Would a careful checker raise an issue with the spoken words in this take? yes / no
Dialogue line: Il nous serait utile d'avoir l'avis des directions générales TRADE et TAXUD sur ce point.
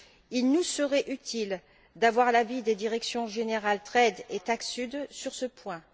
no